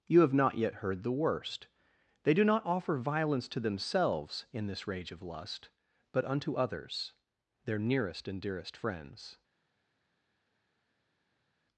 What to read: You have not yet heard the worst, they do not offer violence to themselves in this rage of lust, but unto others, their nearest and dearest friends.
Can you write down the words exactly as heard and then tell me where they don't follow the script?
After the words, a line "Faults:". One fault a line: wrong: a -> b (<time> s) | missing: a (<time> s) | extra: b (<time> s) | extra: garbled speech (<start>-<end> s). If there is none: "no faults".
You have not yet heard the worst, they do not offer violence to themselves in this rage of lust, but unto others, their nearest and dearest friends.
Faults:
no faults